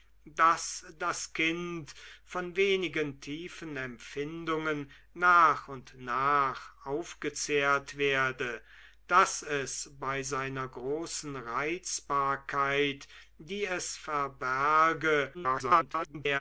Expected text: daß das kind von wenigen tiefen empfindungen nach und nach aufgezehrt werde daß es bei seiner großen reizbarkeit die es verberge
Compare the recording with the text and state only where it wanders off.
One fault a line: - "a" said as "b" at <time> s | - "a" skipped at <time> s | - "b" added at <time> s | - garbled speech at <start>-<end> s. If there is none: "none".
- garbled speech at 15.3-16.4 s